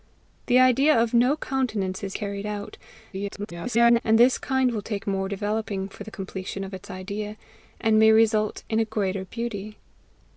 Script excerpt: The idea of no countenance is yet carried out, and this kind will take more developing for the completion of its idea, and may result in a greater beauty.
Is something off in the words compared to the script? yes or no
yes